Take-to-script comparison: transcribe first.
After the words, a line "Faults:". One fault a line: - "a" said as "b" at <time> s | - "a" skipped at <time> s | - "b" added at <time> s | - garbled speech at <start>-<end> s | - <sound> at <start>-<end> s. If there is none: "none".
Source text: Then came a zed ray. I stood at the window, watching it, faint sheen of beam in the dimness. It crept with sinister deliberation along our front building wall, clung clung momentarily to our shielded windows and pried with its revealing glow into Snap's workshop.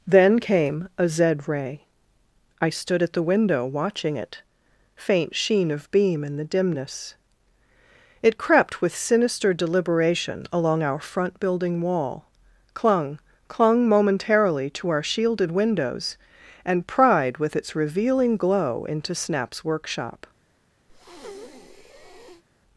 Then came a zed ray. I stood at the window, watching it, faint sheen of beam in the dimness. It crept with sinister deliberation along our front building wall, clung clung momentarily to our shielded windows and pried with its revealing glow into Snap's workshop.
Faults:
- breath at 20.9-22.4 s